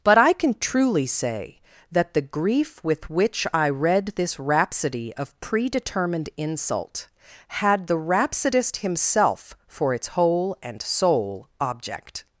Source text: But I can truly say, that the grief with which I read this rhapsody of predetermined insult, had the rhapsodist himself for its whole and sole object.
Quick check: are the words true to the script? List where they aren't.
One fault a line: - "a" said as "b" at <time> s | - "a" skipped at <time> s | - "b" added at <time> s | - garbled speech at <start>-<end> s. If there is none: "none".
none